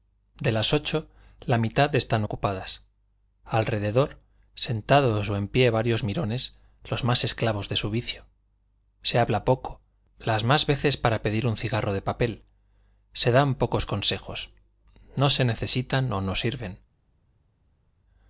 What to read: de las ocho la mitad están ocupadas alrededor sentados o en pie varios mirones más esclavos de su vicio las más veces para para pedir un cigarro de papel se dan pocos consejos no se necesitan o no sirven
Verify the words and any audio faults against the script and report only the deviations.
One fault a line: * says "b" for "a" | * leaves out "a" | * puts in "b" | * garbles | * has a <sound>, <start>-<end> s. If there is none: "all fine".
* puts in "los"
* puts in "se habla poco"
* leaves out "para"